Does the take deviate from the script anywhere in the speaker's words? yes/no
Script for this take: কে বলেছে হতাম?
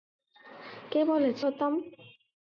no